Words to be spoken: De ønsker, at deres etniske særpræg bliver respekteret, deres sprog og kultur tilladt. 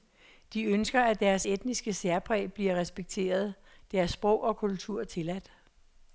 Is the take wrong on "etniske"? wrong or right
right